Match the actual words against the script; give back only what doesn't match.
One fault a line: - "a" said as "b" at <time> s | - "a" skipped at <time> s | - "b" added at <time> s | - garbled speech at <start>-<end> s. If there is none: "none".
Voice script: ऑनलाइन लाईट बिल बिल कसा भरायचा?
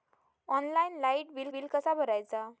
none